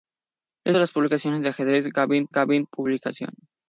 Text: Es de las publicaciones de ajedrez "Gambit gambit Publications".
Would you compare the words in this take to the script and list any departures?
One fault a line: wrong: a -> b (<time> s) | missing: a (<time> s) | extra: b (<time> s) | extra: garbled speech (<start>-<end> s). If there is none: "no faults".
no faults